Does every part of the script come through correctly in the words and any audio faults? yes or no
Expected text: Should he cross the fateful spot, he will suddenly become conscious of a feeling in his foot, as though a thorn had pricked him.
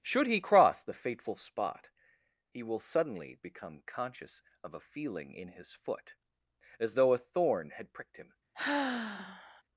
no